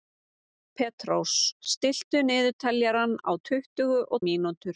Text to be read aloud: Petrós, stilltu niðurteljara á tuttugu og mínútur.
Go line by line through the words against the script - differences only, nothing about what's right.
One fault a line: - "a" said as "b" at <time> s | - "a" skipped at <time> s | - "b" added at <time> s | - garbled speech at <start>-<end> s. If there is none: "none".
none